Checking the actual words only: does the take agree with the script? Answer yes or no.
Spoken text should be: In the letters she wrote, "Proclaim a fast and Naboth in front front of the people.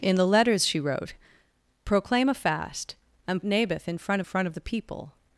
yes